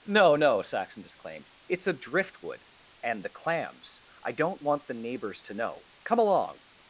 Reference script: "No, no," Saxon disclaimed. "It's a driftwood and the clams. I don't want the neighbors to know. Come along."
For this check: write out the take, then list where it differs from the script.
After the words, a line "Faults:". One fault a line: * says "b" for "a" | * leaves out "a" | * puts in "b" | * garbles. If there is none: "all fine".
"No, no," Saxon disclaimed. "It's a driftwood and the clams. I don't want the neighbors to know. Come along."
Faults:
all fine